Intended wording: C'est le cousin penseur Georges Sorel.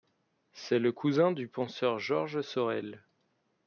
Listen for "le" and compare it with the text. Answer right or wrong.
right